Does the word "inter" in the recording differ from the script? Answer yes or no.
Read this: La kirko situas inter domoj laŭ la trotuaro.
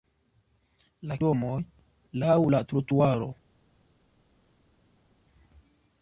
yes